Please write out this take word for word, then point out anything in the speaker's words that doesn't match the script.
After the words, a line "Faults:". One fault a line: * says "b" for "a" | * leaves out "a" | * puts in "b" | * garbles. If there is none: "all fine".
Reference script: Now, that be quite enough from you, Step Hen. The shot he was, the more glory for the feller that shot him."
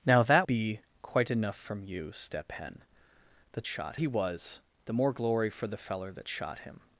Now, that be quite enough from you, Step Hen. The shot he was, the more glory for the feller that shot him."
Faults:
all fine